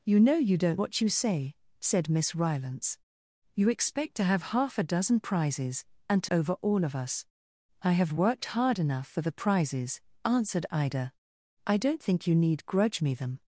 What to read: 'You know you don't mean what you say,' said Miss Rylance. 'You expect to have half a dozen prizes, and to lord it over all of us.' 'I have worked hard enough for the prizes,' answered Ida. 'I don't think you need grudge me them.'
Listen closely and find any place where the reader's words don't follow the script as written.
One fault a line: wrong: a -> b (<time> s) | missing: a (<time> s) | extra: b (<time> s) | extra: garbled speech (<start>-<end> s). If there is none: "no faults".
missing: mean (0.8 s)
missing: lord it (6.3 s)